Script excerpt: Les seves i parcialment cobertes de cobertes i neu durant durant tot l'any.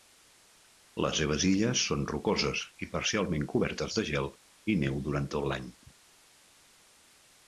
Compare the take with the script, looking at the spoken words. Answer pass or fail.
fail